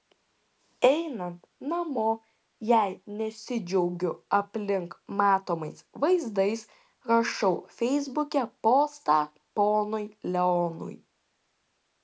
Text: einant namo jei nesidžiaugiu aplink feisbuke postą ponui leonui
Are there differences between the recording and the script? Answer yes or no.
yes